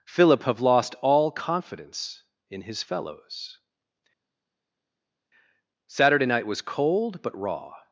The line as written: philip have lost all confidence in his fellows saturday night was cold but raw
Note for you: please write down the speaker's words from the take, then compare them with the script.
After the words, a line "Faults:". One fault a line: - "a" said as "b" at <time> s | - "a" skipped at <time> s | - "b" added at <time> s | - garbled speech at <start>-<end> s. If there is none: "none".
philip have lost all confidence in his fellows saturday night was cold but raw
Faults:
none